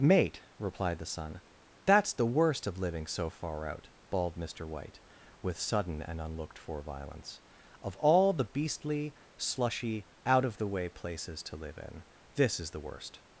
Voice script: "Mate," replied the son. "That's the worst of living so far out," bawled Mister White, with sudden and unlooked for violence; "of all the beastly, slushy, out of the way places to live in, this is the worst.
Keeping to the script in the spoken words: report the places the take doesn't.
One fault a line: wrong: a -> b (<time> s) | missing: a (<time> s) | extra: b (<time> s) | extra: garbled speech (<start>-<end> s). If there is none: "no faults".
no faults